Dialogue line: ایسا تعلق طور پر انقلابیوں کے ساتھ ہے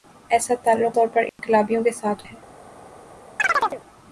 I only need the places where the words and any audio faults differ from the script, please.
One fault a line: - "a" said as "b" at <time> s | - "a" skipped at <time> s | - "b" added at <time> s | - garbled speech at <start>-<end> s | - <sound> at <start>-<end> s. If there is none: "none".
- dropout at 1.3-1.4 s
- chirp at 3.4-3.8 s